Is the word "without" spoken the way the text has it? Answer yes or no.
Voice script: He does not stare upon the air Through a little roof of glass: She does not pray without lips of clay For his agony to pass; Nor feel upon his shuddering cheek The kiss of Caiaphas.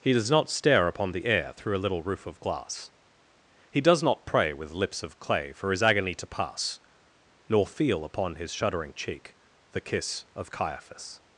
no